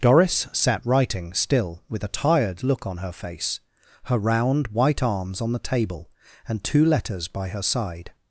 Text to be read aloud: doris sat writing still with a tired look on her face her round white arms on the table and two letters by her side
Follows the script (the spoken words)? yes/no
yes